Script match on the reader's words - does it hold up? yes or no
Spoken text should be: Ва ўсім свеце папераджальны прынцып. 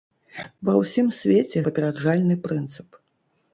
yes